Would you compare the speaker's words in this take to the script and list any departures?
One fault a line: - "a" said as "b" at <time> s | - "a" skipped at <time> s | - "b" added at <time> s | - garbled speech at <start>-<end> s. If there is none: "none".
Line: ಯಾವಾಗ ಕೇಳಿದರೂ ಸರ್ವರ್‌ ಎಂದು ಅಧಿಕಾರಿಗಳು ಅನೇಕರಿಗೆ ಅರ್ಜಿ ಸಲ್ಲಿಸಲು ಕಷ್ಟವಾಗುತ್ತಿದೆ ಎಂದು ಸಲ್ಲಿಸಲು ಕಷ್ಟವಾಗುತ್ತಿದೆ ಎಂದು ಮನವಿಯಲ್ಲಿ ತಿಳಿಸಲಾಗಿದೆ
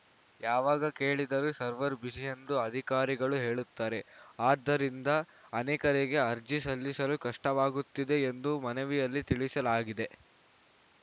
- "ಬ್ಯುಸಿ" added at 2.0 s
- "ಹೇಳುತ್ತಾರೆ ಆದ್ದರಿಂದ" added at 3.4 s
- "ಸಲ್ಲಿಸಲು ಕಷ್ಟವಾಗುತ್ತಿದೆ ಎಂದು" skipped at 8.5 s